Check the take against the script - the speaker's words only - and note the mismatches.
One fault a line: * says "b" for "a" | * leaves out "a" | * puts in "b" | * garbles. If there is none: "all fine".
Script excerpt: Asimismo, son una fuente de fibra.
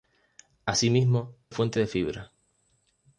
* leaves out "son una"